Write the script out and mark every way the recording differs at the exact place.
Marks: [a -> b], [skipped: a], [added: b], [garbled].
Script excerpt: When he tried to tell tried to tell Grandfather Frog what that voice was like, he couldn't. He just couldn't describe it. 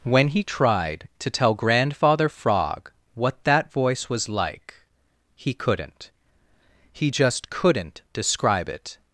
When he tried to tell [skipped: tried to tell] Grandfather Frog what that voice was like, he couldn't. He just couldn't describe it.